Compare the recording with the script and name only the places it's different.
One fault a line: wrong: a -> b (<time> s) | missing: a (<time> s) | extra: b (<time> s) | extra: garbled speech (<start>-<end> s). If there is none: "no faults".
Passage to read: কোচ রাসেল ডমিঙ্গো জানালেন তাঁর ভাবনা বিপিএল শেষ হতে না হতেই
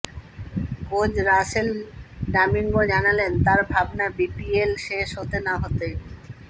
no faults